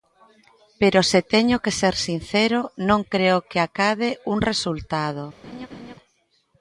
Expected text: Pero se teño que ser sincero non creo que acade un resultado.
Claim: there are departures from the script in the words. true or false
false